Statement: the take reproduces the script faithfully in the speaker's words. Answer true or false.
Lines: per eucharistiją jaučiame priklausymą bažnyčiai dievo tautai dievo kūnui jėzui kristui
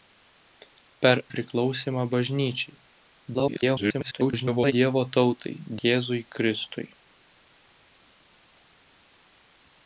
false